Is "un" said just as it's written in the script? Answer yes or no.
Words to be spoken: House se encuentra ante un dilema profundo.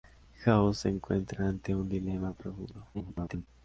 yes